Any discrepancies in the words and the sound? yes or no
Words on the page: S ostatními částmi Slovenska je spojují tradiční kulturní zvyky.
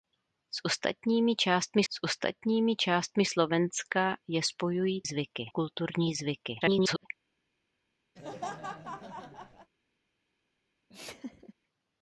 yes